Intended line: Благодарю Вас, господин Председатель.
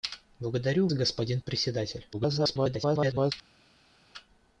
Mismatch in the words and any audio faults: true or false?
true